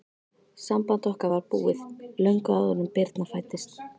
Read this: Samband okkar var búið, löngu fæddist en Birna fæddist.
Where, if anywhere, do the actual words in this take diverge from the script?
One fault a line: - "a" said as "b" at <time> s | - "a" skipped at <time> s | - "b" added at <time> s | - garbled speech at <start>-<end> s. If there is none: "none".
- "fæddist" said as "áður" at 2.6 s